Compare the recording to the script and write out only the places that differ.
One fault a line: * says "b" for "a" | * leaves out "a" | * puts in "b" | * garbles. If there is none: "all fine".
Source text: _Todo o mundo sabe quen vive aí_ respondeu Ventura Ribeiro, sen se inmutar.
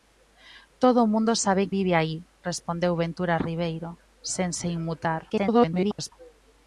* leaves out "quen"
* garbles